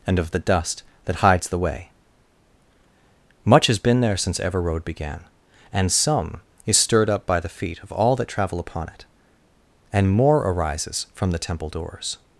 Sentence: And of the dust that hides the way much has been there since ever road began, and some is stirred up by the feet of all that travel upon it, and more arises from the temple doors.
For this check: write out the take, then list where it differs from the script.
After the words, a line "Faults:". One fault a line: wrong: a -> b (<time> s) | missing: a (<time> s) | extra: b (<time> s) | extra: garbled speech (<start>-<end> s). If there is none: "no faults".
And of the dust that hides the way much has been there since ever road began, and some is stirred up by the feet of all that travel upon it, and more arises from the temple doors.
Faults:
no faults